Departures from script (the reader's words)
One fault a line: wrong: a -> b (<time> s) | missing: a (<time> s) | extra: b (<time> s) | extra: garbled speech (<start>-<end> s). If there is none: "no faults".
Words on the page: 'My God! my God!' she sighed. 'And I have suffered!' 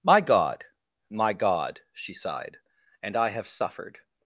no faults